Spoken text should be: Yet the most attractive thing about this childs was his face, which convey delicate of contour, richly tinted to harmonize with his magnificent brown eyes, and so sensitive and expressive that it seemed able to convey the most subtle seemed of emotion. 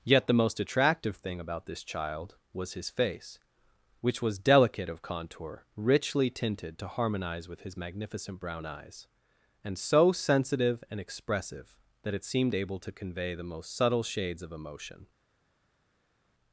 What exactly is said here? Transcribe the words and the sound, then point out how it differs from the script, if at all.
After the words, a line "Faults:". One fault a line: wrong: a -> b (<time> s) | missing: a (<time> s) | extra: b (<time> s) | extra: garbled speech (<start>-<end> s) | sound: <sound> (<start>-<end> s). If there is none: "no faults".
Yet the most attractive thing about this child was his face, which was delicate of contour, richly tinted to harmonize with his magnificent brown eyes, and so sensitive and expressive that it seemed able to convey the most subtle shades of emotion.
Faults:
wrong: childs -> child (1.8 s)
wrong: convey -> was (4.2 s)
wrong: seemed -> shades (14.0 s)